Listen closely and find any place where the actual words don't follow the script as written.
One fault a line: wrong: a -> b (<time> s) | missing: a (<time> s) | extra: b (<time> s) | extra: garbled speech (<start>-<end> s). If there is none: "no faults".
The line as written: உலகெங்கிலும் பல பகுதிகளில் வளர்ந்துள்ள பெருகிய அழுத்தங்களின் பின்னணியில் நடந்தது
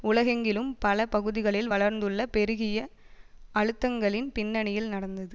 no faults